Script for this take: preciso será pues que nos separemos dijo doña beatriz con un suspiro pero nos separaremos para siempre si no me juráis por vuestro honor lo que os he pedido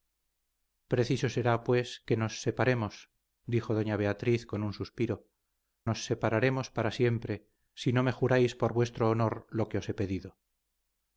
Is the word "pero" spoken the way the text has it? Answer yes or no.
no